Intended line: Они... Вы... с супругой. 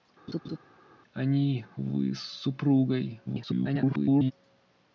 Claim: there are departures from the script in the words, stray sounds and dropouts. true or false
true